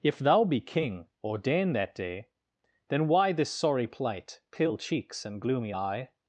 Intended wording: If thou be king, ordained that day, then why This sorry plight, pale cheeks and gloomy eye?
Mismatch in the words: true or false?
false